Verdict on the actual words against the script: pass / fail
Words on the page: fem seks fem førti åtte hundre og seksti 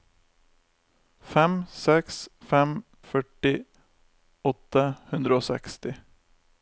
pass